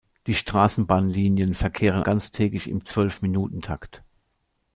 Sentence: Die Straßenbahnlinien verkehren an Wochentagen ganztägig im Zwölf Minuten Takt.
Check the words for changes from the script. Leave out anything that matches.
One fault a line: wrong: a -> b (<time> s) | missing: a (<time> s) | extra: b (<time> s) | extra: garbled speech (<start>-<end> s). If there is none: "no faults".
missing: an Wochentagen (2.0 s)